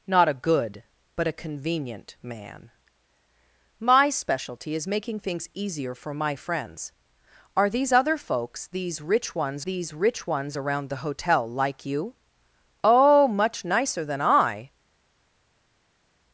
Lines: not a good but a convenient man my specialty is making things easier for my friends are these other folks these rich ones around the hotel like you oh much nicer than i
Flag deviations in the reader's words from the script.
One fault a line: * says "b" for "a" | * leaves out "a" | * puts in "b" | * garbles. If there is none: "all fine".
* puts in "these rich ones"